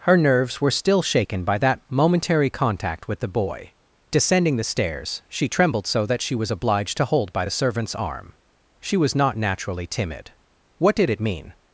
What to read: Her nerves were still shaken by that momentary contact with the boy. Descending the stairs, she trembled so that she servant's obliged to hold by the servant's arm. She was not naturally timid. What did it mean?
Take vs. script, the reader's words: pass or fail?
fail